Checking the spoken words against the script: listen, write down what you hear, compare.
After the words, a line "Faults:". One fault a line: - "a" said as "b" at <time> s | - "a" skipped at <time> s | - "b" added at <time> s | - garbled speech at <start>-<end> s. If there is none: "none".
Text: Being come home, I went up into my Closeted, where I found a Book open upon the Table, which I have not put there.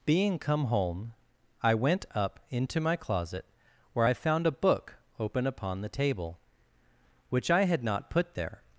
Being come home, I went up into my Closet, where I found a Book open upon the Table, which I had not put there.
Faults:
- "Closeted" said as "Closet" at 2.9 s
- "have" said as "had" at 7.6 s